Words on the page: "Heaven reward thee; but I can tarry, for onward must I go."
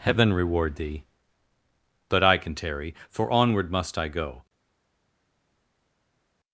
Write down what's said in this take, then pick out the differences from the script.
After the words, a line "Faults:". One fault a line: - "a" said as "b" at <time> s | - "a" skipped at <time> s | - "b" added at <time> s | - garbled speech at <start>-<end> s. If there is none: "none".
"Heaven reward thee; but I can tarry, for onward must I go."
Faults:
none